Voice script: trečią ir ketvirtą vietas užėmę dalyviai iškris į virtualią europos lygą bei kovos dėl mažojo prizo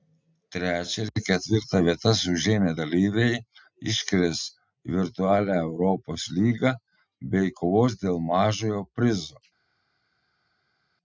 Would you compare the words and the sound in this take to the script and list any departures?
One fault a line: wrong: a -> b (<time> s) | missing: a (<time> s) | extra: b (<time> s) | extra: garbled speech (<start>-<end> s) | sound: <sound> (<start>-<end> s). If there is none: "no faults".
no faults